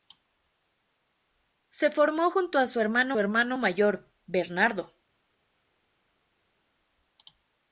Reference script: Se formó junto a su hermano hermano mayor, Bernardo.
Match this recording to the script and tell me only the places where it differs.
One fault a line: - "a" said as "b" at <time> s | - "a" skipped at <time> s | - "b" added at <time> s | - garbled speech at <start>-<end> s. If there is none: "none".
none